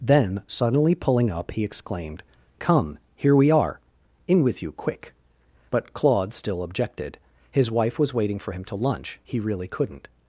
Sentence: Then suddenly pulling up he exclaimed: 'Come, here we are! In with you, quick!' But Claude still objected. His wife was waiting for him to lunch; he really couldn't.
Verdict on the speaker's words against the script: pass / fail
pass